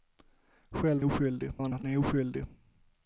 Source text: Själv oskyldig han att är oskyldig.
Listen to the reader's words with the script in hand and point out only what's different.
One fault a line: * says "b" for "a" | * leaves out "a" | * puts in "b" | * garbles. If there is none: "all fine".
all fine